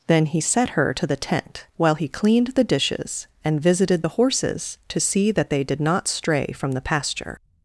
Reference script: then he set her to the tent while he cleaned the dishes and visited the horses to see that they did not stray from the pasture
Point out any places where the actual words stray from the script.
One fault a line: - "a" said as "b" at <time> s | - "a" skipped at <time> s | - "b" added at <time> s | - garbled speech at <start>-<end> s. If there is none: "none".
none